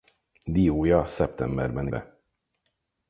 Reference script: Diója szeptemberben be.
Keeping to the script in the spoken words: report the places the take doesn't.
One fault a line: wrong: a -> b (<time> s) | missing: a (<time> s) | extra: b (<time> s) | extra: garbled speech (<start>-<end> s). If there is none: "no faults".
no faults